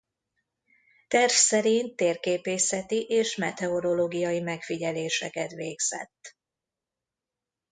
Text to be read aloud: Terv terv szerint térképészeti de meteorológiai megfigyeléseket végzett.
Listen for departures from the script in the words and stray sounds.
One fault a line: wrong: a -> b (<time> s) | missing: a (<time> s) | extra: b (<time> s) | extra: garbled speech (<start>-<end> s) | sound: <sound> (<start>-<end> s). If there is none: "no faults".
missing: terv (1.3 s)
wrong: de -> és (3.0 s)